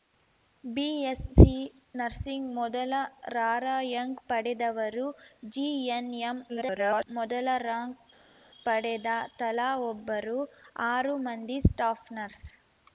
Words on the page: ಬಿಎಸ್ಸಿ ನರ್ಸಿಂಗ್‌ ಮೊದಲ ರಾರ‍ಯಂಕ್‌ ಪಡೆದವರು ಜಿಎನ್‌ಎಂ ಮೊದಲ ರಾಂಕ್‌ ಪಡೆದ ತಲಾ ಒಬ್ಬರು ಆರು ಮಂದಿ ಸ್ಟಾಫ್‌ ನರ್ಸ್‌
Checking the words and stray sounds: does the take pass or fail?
fail